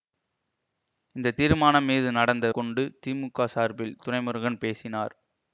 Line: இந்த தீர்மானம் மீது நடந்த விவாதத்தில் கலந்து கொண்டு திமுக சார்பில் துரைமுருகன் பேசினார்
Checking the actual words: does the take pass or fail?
fail